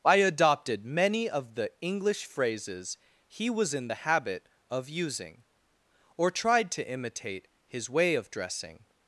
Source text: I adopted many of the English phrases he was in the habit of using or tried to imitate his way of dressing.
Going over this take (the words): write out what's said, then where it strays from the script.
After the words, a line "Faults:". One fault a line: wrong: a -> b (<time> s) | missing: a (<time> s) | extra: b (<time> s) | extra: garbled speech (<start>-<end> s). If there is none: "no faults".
I adopted many of the English phrases he was in the habit of using or tried to imitate his way of dressing.
Faults:
no faults